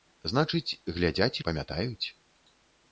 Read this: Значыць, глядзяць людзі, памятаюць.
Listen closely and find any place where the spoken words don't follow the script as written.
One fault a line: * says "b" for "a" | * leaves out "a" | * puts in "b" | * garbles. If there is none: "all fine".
* leaves out "людзі"